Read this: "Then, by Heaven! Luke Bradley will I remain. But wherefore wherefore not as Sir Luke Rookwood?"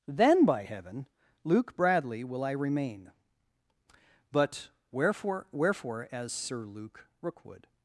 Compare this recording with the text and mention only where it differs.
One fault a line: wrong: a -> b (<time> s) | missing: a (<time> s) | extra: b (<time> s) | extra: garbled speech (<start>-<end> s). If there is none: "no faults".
missing: not (6.1 s)